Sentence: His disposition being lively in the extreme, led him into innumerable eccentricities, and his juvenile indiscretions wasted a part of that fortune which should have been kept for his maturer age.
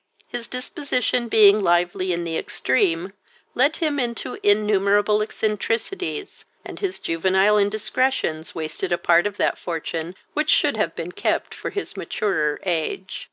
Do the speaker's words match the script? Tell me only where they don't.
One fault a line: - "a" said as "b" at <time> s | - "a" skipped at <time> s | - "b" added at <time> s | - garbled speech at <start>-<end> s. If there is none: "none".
none